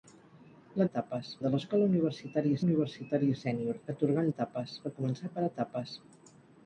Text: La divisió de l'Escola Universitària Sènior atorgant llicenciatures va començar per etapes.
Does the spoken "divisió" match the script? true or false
false